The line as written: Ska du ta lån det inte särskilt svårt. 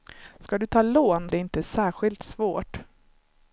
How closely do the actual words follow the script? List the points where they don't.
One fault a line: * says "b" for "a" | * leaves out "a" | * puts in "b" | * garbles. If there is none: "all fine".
all fine